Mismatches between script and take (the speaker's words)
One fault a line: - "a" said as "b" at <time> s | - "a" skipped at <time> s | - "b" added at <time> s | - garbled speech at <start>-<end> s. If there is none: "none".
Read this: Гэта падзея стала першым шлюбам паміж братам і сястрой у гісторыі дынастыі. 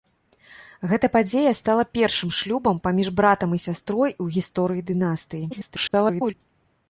- garbled speech at 5.5-6.3 s